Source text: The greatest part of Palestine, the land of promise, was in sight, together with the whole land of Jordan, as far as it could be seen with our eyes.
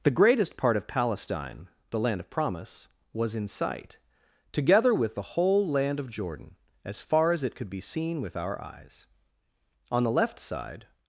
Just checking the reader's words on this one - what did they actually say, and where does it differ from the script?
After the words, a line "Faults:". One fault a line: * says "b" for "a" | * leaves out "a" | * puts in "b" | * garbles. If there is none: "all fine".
The greatest part of Palestine, the land of promise, was in sight, together with the whole land of Jordan, as far as it could be seen with our eyes. On the left side
Faults:
* puts in "On the left side"